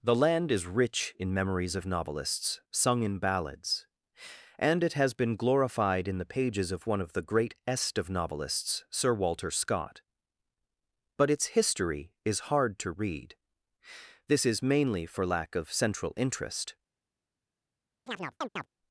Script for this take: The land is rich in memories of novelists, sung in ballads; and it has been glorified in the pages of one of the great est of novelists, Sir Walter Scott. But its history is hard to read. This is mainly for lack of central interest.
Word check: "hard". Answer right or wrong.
right